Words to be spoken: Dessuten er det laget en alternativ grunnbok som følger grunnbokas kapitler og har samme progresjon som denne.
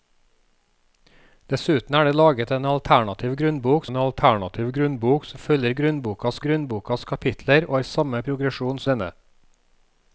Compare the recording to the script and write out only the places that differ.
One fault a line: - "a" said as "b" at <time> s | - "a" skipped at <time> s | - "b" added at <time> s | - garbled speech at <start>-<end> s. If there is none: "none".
- "en alternativ grunnbok" added at 3.9 s
- "grunnbokas" added at 6.4 s
- "som" skipped at 8.8 s